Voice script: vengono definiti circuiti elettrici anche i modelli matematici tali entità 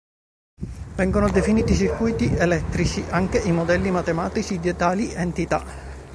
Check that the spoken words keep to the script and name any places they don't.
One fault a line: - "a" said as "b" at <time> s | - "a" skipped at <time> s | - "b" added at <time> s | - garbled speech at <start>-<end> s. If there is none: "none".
- "di" added at 4.6 s